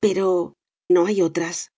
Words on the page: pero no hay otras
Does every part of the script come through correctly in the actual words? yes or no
yes